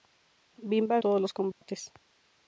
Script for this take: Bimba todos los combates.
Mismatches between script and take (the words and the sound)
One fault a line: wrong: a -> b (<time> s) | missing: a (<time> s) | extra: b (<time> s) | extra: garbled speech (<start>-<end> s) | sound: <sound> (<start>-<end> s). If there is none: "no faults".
sound: dropout (1.5-1.6 s)